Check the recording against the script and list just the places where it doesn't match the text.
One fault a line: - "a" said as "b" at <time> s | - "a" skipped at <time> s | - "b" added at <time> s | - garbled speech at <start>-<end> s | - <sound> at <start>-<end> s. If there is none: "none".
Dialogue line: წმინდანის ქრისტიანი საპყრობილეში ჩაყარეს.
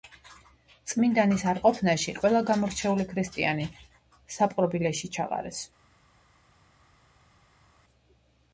- "არყოფნაში ყველა გამორჩეული" added at 1.5 s